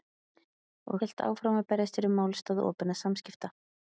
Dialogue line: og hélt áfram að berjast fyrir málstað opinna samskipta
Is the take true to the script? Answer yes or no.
yes